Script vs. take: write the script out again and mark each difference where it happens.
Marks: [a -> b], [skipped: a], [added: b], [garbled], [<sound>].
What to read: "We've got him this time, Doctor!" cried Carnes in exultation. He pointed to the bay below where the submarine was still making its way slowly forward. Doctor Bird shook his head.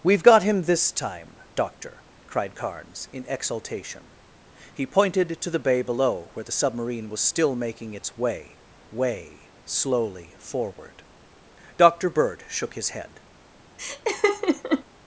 "We've got him this time, Doctor!" cried Carnes in exultation. He pointed to the bay below where the submarine was still making its way [added: way] slowly forward. Doctor Bird shook his head. [laugh]